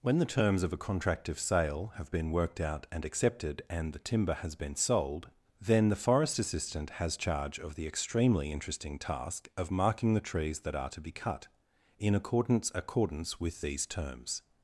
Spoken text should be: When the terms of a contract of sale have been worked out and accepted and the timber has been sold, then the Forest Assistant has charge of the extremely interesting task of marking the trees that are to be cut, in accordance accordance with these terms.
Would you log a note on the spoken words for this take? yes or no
no